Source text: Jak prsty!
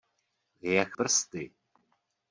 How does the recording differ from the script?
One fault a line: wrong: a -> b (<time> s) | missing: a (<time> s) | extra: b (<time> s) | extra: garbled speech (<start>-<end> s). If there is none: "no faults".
no faults